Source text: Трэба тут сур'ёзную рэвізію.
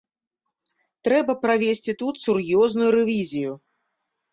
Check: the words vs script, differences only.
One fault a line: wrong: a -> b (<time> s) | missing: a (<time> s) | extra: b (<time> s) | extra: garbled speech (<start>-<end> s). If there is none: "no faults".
extra: правесці (1.4 s)